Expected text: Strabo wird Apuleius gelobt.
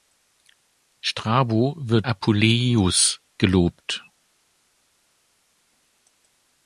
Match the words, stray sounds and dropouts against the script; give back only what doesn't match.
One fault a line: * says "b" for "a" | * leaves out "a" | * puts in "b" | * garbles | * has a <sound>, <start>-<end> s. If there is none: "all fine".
all fine